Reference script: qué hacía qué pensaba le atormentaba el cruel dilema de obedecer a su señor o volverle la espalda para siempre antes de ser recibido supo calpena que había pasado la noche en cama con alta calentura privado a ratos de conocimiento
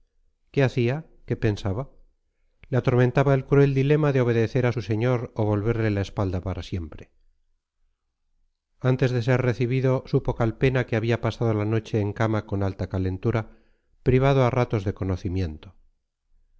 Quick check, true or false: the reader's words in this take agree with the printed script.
true